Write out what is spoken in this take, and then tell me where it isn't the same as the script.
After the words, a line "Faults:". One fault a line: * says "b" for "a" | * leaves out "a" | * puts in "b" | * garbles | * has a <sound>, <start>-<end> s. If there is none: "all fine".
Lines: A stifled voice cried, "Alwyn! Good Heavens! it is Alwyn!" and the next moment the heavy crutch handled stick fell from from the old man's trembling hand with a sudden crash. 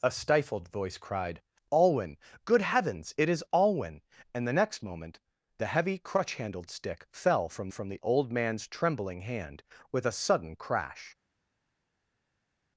A stifled voice cried, "Alwyn! Good Heavens! it is Alwyn!" and the next moment the heavy crutch handled stick fell from from the old man's trembling hand with a sudden crash.
Faults:
all fine